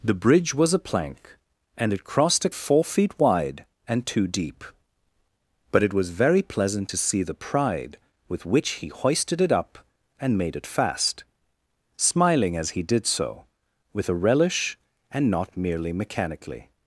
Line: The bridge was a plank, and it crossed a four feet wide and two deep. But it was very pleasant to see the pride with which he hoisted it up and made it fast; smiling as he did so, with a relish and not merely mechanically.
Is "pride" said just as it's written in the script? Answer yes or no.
yes